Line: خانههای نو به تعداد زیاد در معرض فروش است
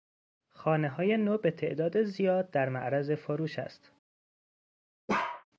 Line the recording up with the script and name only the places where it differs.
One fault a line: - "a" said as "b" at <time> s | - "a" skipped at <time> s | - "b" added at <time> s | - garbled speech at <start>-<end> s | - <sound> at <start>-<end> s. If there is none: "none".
- bark at 5.1-5.4 s